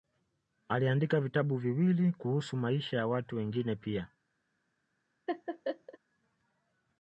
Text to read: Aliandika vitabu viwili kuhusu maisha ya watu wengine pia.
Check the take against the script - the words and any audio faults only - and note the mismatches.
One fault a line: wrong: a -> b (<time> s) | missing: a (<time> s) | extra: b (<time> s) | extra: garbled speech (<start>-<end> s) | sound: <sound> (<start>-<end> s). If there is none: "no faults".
sound: laugh (5.3-6.0 s)